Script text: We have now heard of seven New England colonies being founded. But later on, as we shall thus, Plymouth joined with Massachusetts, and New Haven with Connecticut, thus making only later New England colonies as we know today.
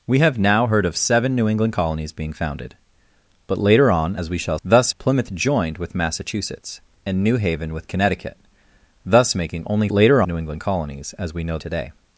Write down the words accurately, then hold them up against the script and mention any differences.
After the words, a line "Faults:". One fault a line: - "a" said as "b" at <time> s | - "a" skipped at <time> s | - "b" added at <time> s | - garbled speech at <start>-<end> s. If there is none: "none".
We have now heard of seven New England colonies being founded. But later on, as we shall thus, Plymouth joined with Massachusetts, and New Haven with Connecticut, thus making only later New England colonies as we know today.
Faults:
none